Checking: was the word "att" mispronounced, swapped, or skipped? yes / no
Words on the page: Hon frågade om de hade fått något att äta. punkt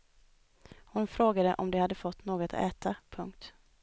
yes